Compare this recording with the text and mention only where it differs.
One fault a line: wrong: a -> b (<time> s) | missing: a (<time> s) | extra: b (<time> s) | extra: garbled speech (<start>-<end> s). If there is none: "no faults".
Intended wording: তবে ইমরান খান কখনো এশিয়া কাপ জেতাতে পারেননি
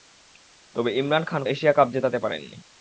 missing: কখনো (1.4 s)